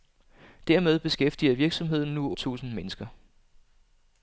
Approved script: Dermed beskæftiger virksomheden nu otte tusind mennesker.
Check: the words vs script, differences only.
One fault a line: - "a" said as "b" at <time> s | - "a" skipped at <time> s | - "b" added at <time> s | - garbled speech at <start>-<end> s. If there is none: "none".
- "otte" skipped at 2.3 s